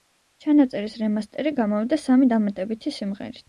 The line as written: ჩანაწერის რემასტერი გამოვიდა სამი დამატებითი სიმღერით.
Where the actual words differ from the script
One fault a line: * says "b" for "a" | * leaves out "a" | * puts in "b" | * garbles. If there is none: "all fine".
all fine